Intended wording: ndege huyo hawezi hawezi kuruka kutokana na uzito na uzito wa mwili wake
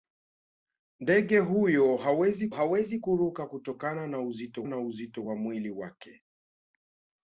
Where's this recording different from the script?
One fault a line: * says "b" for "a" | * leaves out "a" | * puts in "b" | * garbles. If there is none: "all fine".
all fine